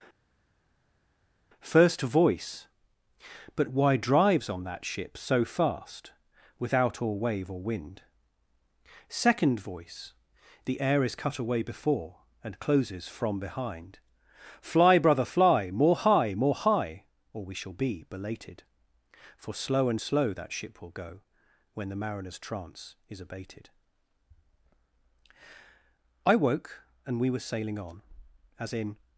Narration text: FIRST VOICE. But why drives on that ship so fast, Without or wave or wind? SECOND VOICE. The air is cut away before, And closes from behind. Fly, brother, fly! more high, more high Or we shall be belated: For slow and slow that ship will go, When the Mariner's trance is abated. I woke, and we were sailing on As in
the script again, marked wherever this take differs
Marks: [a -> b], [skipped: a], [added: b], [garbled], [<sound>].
FIRST VOICE. But why drives on that ship so fast, Without or wave or wind? SECOND VOICE. The air is cut away before, And closes from behind. Fly, brother, fly! more high, more high Or we shall be belated: For slow and slow that ship will go, When the Mariner's trance is abated. I woke, and we were sailing on As in